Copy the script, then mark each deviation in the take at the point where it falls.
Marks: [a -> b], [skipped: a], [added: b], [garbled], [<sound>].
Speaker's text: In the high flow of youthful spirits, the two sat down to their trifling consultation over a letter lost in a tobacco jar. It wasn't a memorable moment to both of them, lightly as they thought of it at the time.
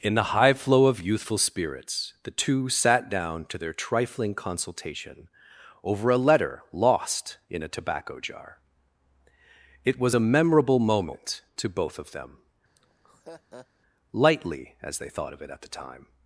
In the high flow of youthful spirits, the two sat down to their trifling consultation over a letter lost in a tobacco jar. It [wasn't -> was] a memorable moment to both of them, [laugh] lightly as they thought of it at the time.